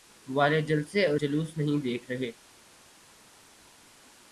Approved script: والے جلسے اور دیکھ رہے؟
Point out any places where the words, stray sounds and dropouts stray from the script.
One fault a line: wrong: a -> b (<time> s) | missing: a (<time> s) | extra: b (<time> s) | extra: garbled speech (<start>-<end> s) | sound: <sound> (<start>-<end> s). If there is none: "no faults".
extra: جلوس نہیں (1.1 s)